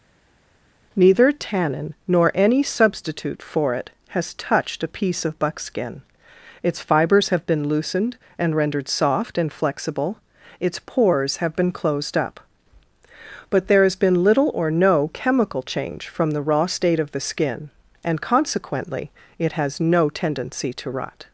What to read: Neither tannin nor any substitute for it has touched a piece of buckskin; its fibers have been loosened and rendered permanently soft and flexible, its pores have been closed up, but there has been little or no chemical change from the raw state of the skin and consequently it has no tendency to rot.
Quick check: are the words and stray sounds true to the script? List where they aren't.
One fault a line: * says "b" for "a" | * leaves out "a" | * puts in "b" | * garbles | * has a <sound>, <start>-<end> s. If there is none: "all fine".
* leaves out "permanently"